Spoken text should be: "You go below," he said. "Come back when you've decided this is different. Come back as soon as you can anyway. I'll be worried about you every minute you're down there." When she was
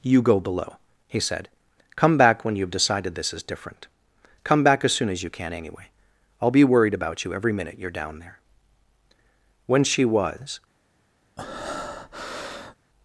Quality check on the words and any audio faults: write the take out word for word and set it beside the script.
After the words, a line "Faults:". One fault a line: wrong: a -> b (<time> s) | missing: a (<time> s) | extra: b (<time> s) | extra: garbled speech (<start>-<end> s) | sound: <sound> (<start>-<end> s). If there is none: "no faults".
"You go below," he said. "Come back when you've decided this is different. Come back as soon as you can anyway. I'll be worried about you every minute you're down there." When she was
Faults:
sound: breath (11.4-12.8 s)